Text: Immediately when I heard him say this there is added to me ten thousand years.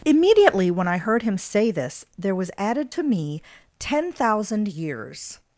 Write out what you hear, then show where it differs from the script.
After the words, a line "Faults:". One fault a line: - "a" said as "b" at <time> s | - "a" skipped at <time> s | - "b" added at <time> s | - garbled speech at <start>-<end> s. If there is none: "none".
Immediately when I heard him say this there was added to me ten thousand years.
Faults:
- "is" said as "was" at 2.4 s